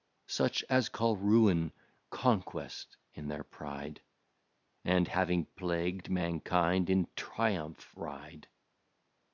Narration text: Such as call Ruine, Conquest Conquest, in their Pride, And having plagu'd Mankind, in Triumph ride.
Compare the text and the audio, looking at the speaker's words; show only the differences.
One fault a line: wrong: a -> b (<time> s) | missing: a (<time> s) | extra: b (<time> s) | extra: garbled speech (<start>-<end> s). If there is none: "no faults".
missing: Conquest (2.9 s)